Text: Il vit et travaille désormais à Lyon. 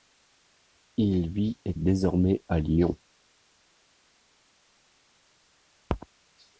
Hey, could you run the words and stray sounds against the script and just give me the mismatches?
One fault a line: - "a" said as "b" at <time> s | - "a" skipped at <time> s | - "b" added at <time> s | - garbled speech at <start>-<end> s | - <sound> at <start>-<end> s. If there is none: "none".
- "travaille" skipped at 1.7 s